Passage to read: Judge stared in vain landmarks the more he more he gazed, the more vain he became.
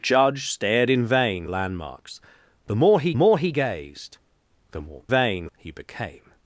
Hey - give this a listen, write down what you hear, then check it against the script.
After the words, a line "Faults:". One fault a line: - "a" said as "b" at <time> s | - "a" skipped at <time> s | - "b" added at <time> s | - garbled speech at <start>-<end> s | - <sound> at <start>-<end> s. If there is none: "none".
Judge stared in vain landmarks the more he more he gazed, the more vain he became.
Faults:
none